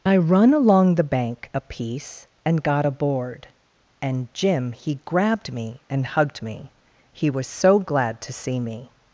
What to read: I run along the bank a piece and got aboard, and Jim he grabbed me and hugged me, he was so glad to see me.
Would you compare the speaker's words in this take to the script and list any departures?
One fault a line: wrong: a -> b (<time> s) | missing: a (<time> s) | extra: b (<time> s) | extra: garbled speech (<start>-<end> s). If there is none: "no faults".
no faults